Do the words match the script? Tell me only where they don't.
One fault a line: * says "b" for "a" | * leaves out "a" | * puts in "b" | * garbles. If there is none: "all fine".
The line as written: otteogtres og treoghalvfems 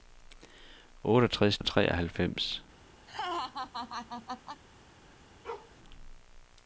all fine